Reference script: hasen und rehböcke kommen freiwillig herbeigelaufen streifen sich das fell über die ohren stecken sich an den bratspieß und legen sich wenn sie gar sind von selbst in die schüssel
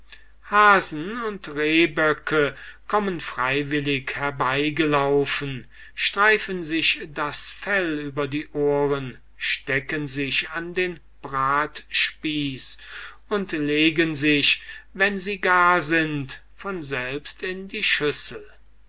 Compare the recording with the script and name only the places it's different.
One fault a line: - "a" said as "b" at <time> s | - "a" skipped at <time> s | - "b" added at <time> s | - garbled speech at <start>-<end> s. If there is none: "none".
none